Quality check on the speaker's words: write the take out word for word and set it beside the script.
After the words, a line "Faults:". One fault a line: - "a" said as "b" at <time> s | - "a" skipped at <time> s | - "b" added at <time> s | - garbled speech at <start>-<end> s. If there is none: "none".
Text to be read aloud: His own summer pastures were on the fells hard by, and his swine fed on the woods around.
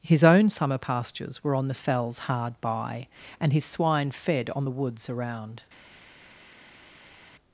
His own summer pastures were on the fells hard by, and his swine fed on the woods around.
Faults:
none